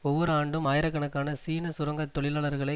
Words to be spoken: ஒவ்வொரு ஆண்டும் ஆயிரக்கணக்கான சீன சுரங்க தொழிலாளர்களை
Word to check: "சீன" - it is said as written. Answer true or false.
true